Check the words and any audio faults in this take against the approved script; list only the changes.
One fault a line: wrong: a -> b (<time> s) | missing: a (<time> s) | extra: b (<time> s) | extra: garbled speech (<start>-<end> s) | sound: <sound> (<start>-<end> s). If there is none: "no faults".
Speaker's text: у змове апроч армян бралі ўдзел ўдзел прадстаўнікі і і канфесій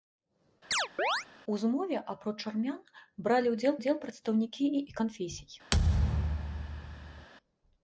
sound: chirp (0.7-1.3 s)
sound: thud (5.7-7.3 s)